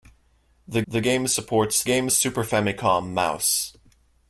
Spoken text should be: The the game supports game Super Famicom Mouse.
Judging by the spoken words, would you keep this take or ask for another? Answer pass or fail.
pass